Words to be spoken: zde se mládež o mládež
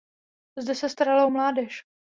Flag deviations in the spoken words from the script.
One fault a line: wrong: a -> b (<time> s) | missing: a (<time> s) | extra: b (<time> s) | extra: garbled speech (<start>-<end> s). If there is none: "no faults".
wrong: mládež -> starala (0.9 s)